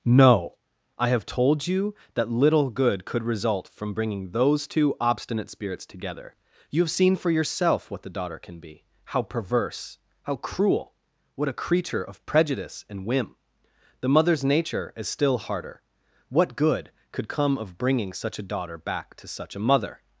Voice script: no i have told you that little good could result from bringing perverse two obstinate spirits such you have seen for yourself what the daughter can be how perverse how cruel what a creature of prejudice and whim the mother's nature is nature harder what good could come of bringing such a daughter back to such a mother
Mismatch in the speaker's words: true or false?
true